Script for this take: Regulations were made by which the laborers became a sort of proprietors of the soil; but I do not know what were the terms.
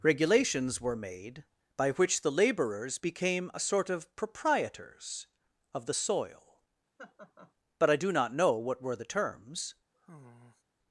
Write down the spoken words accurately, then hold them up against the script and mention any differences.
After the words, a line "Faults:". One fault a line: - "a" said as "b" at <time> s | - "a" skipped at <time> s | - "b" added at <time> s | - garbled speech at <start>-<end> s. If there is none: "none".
Regulations were made by which the laborers became a sort of proprietors of the soil; but I do not know what were the terms.
Faults:
none